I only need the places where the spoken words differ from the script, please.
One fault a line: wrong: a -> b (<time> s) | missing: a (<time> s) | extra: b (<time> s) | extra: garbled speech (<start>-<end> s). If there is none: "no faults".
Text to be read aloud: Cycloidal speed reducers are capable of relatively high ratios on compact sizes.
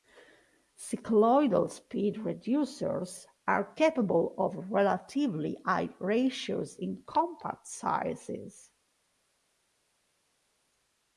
wrong: on -> in (6.8 s)